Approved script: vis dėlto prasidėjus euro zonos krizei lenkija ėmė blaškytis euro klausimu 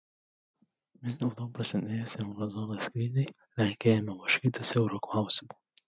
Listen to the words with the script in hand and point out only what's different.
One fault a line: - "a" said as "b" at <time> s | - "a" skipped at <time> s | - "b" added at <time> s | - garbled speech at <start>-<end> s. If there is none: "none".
none